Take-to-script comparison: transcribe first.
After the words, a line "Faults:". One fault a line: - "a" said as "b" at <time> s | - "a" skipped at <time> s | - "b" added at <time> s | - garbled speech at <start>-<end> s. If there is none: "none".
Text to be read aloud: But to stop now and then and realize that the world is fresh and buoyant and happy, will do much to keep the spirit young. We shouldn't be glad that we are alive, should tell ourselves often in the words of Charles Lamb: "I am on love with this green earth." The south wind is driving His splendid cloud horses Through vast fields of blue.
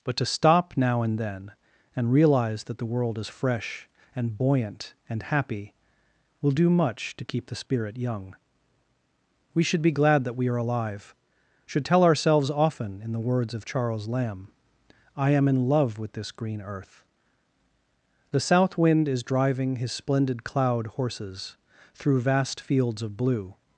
But to stop now and then and realize that the world is fresh and buoyant and happy, will do much to keep the spirit young. We should be glad that we are alive, should tell ourselves often in the words of Charles Lamb: "I am in love with this green earth." The south wind is driving His splendid cloud horses Through vast fields of blue.
Faults:
- "shouldn't" said as "should" at 9.6 s
- "on" said as "in" at 15.5 s